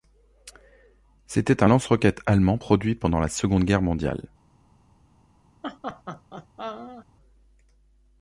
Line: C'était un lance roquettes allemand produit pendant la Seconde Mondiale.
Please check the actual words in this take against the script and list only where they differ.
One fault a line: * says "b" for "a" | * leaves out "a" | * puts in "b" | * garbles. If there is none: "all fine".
* puts in "Guerre"